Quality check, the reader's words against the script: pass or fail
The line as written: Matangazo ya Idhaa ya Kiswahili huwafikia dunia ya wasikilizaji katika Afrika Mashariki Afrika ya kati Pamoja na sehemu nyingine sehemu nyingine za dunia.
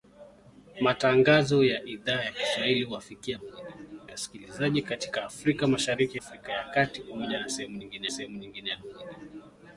pass